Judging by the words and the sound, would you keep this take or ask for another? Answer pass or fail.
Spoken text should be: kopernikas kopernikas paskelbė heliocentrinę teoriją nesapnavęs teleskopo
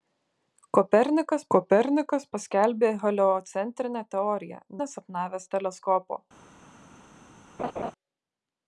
fail